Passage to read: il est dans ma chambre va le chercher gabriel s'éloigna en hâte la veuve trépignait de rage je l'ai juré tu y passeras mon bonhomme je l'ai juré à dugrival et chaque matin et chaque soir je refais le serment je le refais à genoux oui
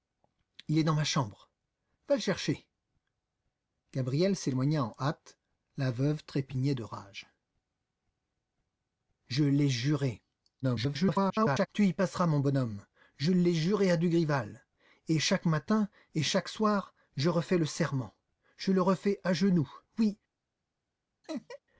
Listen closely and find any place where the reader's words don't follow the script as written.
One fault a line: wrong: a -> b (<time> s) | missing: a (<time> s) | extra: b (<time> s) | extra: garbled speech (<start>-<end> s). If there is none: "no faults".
extra: garbled speech (10.6-11.7 s)